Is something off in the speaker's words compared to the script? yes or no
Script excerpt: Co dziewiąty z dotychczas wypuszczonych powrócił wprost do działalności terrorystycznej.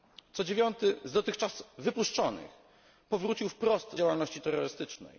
yes